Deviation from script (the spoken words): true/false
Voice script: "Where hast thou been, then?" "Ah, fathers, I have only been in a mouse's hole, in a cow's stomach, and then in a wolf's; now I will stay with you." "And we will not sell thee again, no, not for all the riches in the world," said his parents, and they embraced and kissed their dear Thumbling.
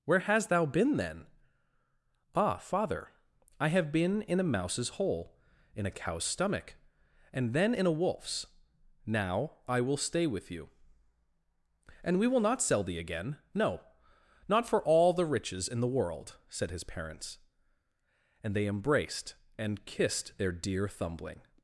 true